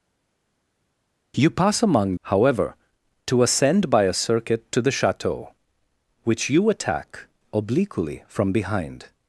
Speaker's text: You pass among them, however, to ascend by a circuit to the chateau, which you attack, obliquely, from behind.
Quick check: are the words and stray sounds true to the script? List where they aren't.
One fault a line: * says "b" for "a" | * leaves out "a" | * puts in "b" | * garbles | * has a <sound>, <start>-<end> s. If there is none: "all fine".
* leaves out "them"